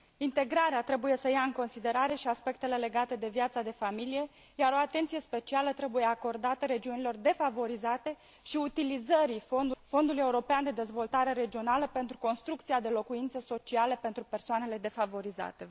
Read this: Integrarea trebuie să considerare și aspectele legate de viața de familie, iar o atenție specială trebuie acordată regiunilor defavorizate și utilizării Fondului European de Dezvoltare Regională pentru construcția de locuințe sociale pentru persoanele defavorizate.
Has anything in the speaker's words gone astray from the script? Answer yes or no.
yes